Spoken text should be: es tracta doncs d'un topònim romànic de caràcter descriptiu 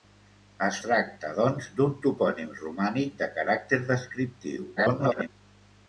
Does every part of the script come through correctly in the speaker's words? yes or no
no